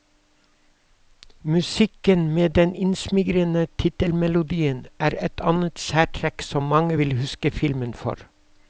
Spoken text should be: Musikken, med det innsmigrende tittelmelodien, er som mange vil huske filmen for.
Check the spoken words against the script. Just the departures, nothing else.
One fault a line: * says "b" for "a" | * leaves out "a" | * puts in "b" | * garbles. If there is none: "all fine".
* says "den" for "det"
* puts in "et annet særtrekk"